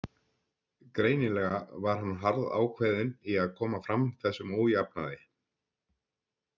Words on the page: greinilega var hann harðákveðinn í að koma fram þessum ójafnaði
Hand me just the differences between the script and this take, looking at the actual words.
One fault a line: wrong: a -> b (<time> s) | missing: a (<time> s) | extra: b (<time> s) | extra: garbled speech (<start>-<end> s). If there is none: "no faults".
no faults